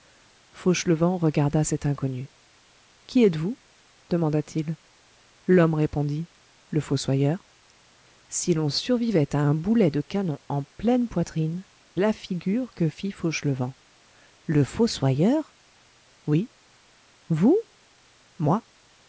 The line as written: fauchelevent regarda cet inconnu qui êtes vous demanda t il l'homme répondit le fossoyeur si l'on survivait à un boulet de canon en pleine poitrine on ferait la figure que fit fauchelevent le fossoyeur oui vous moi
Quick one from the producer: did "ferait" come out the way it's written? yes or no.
no